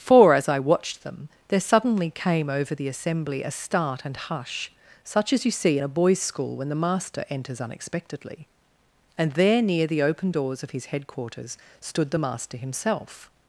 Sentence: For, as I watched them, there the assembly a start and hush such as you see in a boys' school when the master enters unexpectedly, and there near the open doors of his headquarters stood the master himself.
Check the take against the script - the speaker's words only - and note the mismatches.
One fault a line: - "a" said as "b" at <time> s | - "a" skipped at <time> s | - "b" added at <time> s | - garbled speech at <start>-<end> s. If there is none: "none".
- "suddenly came over" added at 1.6 s